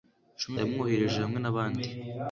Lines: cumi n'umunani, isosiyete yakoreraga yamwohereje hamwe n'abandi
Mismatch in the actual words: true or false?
true